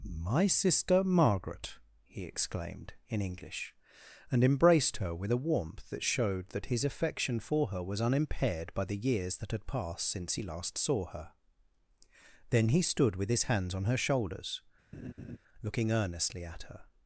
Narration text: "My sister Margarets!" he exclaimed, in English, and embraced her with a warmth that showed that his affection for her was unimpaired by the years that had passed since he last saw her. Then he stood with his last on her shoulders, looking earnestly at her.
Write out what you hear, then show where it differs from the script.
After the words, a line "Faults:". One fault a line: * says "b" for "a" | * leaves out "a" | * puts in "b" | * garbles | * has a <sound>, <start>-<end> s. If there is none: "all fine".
"My sister Margaret!" he exclaimed, in English, and embraced her with a warmth that showed that his affection for her was unimpaired by the years that had passed since he last saw her. Then he stood with his hands on her shoulders, looking earnestly at her.
Faults:
* says "Margaret" for "Margarets"
* says "hands" for "last"
* has a laugh, 14.9-15.4 s